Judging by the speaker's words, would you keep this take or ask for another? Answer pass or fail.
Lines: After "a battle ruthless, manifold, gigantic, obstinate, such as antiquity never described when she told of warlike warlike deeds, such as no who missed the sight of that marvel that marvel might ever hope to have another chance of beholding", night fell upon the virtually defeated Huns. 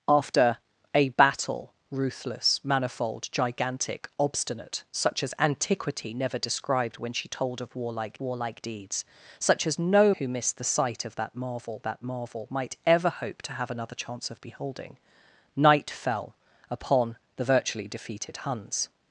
pass